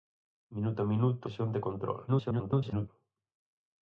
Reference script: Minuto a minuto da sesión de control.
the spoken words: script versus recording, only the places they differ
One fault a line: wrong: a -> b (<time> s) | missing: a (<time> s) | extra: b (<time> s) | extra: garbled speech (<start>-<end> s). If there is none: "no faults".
missing: da (1.2 s)
extra: garbled speech (2.1-2.9 s)